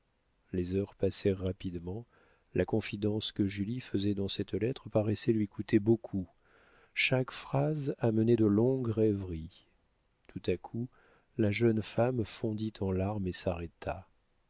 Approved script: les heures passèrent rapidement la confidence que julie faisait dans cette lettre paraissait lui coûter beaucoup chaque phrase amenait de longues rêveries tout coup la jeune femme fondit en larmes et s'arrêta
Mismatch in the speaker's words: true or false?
true